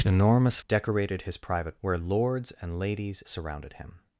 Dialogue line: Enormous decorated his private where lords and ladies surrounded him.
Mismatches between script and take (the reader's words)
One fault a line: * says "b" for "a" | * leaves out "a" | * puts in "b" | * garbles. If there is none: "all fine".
all fine